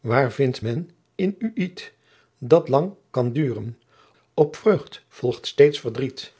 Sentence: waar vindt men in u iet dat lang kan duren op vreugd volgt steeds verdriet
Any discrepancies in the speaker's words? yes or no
no